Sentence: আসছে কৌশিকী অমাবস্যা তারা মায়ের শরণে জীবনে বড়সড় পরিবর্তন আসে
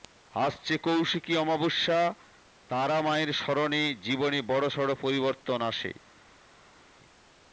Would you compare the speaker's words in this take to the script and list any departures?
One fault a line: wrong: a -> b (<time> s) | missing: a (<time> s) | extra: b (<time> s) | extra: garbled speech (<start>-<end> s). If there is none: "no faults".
no faults